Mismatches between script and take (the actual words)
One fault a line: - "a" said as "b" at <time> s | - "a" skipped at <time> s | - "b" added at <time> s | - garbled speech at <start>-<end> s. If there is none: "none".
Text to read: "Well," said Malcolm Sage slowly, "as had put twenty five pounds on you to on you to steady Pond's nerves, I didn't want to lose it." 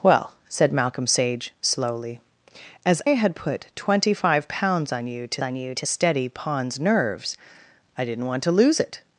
none